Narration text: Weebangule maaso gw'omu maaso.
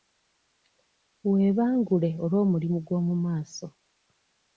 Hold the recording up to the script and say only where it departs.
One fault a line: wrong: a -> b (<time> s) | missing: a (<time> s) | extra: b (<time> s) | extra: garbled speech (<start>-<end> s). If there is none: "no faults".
wrong: maaso -> olw'omulimu (2.2 s)